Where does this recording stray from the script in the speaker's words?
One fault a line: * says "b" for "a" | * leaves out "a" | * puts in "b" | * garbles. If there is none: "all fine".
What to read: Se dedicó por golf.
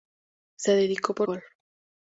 all fine